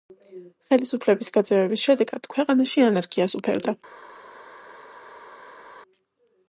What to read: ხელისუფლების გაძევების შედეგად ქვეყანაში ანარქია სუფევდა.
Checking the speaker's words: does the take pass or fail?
pass